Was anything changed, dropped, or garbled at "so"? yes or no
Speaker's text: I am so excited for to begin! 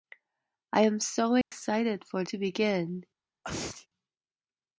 no